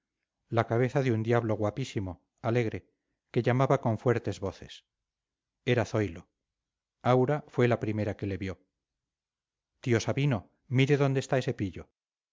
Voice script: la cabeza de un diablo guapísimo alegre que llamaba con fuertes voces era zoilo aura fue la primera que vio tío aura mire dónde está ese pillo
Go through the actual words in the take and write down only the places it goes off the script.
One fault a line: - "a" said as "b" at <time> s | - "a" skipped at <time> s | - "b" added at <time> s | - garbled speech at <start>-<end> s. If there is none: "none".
- "le" added at 8.3 s
- "aura" said as "sabino" at 10.0 s